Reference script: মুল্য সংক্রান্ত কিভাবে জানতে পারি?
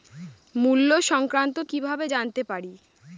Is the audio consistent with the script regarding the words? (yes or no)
yes